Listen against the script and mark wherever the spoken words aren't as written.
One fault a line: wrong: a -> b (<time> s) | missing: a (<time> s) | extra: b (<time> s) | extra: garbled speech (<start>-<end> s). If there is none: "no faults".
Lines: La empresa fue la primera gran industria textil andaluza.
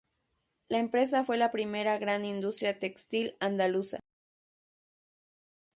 no faults